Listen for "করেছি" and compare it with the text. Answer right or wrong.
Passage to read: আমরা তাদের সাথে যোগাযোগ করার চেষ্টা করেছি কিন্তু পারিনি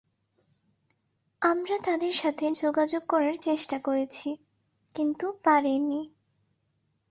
right